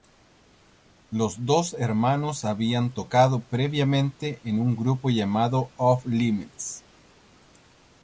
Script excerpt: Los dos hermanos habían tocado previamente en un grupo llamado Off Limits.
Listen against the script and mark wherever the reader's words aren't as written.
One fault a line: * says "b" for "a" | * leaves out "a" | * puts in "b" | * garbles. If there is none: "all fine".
all fine